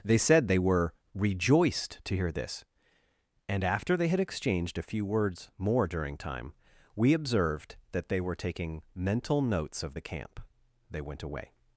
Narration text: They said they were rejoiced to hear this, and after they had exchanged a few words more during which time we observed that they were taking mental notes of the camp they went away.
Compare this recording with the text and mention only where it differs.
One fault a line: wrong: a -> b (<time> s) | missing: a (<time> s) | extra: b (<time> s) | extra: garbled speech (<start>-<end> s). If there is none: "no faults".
missing: which (6.2 s)